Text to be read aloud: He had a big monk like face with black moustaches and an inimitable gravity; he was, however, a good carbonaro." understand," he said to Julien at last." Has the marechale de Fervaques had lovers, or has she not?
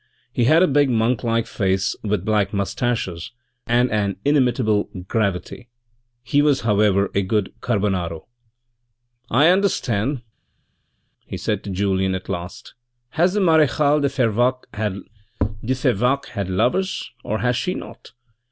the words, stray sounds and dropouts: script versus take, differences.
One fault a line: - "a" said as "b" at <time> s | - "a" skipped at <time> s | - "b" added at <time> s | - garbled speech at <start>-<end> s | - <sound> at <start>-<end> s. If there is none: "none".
- "I" added at 9.3 s